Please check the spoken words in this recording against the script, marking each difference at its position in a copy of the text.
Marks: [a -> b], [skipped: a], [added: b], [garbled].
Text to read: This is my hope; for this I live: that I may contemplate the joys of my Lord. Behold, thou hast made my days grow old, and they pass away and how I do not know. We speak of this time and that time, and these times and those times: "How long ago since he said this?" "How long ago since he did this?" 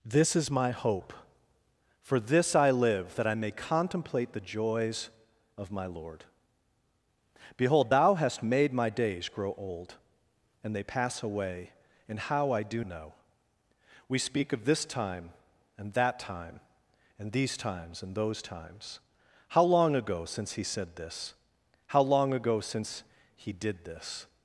This is my hope; for this I live: that I may contemplate the joys of my Lord. Behold, thou hast made my days grow old, and they pass away and how I do [skipped: not] know. We speak of this time and that time, and these times and those times: "How long ago since he said this?" "How long ago since he did this?"